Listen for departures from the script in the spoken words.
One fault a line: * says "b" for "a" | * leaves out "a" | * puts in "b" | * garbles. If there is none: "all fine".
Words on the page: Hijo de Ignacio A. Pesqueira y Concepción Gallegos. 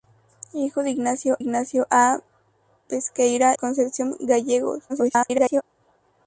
* puts in "Ignacio"
* leaves out "y"
* garbles